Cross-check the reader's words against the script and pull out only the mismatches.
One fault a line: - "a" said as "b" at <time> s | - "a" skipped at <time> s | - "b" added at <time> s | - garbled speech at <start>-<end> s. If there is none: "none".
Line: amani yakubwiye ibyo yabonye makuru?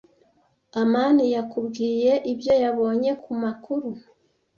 - "ku" added at 3.2 s